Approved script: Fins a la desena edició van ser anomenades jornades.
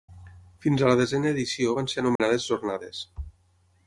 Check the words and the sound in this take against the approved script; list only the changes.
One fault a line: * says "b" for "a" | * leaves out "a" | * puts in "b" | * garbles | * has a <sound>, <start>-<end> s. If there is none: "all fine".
* has a dropout, 2.2-2.2 s